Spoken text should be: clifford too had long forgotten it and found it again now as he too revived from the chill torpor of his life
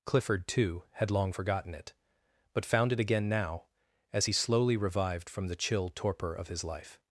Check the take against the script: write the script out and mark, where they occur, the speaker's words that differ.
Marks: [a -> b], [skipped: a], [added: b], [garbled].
clifford too had long forgotten it [and -> but] found it again now as he [too -> slowly] revived from the chill torpor of his life